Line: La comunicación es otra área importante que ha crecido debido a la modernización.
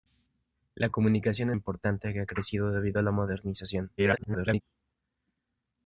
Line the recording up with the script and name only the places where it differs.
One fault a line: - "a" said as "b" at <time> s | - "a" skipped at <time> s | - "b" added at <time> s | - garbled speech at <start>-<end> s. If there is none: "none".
- "es otra área" skipped at 1.5 s
- garbled speech at 4.0-4.6 s